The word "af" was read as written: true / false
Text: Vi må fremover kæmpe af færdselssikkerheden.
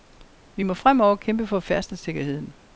false